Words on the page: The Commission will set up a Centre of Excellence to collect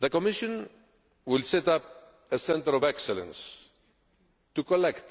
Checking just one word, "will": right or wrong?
right